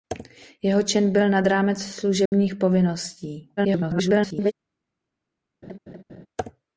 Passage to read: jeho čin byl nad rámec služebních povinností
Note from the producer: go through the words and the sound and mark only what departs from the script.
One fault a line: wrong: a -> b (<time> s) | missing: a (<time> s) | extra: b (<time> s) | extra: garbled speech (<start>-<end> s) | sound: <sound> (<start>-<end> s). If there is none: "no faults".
sound: dropout (2.3-2.3 s)
extra: garbled speech (3.6-4.5 s)
sound: laugh (5.6-6.3 s)